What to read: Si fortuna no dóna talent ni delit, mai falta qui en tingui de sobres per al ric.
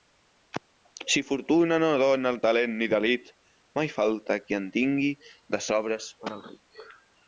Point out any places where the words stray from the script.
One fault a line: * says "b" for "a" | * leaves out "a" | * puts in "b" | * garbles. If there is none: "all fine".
all fine